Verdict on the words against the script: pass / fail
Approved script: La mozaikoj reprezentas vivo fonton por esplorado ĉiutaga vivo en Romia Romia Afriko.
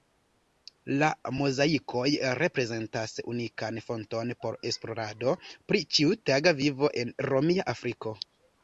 fail